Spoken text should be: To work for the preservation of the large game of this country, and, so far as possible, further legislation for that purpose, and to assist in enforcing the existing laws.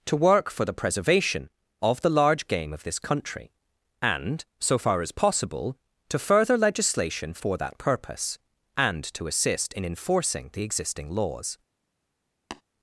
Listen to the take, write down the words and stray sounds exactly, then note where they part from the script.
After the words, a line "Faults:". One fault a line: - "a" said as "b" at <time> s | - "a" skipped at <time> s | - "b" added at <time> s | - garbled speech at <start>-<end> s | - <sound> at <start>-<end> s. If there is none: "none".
To work for the preservation of the large game of this country, and, so far as possible, to further legislation for that purpose, and to assist in enforcing the existing laws.
Faults:
- "to" added at 6.1 s
- tap at 12.5-12.6 s